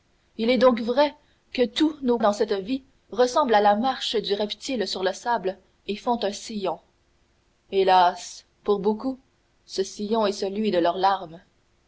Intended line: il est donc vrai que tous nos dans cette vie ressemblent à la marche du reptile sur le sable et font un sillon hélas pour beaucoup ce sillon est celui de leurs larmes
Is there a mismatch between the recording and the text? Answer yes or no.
no